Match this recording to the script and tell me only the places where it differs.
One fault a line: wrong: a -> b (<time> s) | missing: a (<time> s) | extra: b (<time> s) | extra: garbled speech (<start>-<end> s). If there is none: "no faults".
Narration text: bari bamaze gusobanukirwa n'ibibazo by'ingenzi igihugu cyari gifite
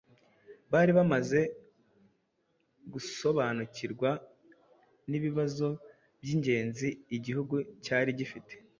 no faults